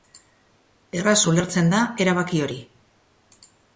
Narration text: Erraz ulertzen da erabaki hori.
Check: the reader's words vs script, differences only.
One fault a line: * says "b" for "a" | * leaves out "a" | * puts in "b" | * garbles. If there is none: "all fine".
all fine